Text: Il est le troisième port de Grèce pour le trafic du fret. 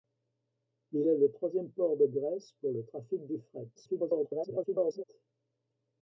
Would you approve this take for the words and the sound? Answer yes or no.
no